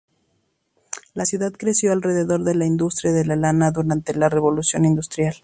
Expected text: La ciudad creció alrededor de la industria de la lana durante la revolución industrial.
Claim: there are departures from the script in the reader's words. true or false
false